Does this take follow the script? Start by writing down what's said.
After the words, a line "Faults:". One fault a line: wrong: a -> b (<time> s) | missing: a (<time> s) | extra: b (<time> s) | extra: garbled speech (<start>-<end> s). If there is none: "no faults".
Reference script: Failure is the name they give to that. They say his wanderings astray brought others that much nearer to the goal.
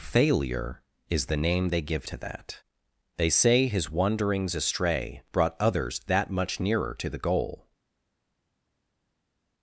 Failure is the name they give to that. They say his wanderings astray brought others that much nearer to the goal.
Faults:
no faults